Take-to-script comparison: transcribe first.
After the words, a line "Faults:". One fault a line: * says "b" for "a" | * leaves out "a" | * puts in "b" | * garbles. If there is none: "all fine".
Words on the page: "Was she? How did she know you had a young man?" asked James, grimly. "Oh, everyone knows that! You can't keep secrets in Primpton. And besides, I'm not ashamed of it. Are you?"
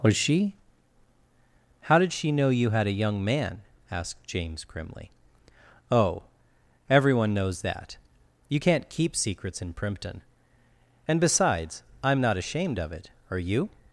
"Was she? How did she know you had a young man?" asked James, grimly. "Oh, everyone knows that! You can't keep secrets in Primpton. And besides, I'm not ashamed of it. Are you?"
Faults:
all fine